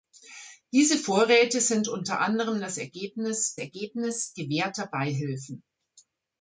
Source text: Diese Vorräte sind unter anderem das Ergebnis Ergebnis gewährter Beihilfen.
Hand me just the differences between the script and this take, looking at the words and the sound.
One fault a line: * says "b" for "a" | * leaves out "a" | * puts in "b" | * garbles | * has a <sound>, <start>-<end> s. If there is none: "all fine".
all fine